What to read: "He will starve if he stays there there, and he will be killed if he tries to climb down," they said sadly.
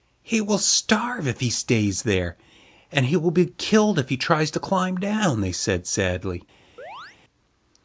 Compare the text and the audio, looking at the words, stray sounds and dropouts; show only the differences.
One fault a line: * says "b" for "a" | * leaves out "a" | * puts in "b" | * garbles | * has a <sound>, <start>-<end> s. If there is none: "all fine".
* leaves out "there"
* has a chirp, 6.8-7.2 s